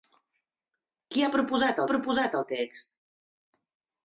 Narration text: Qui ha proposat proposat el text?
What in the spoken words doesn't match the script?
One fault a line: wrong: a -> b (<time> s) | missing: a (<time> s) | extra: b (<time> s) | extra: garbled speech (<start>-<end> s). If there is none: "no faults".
no faults